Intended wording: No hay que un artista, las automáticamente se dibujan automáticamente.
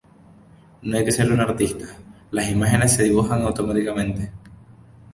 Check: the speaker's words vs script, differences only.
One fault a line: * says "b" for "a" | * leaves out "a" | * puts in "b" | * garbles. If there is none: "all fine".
* puts in "ser"
* says "imágenes" for "automáticamente"